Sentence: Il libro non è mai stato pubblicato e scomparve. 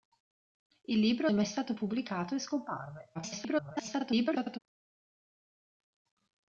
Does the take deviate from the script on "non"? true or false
true